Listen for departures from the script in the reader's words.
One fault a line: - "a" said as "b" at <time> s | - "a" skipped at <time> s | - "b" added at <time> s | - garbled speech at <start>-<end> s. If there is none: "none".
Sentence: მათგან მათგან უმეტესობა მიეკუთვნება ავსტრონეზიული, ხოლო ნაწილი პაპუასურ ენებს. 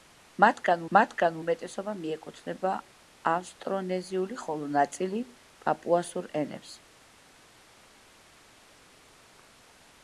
none